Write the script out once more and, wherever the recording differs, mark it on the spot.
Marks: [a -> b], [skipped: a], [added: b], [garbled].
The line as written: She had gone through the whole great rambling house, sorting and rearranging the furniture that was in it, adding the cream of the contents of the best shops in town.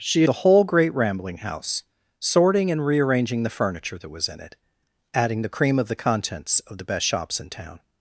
She [skipped: had gone through] the whole great rambling house, sorting and rearranging the furniture that was in it, adding the cream of the contents of the best shops in town.